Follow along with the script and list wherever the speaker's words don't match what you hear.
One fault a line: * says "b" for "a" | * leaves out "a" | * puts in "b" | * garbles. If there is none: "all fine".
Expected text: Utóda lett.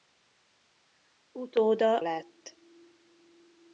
all fine